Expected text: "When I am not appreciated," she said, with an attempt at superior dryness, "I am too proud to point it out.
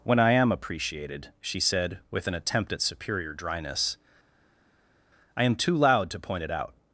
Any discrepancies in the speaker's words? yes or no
yes